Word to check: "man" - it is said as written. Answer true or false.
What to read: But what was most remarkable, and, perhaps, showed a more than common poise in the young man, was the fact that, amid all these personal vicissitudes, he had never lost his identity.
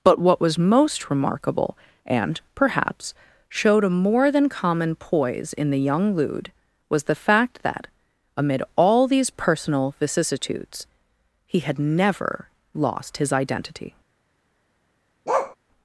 false